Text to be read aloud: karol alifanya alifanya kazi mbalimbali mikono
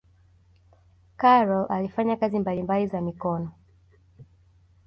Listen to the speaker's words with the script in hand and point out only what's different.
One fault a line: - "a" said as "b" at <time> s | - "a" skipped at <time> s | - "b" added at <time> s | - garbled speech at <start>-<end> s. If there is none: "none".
- "alifanya" skipped at 2.2 s
- "za" added at 2.9 s